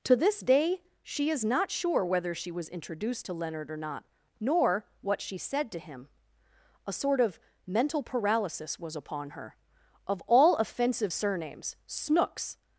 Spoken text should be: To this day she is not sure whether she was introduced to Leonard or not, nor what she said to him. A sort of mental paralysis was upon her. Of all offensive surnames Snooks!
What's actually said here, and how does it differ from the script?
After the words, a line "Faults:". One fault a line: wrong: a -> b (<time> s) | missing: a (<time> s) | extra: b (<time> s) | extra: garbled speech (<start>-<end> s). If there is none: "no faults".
To this day she is not sure whether she was introduced to Leonard or not, nor what she said to him. A sort of mental paralysis was upon her. Of all offensive surnames Snooks!
Faults:
no faults